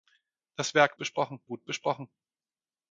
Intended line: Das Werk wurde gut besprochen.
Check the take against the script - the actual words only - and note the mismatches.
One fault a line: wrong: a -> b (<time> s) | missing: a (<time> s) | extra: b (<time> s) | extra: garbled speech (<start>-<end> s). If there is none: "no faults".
wrong: wurde -> besprochen (1.0 s)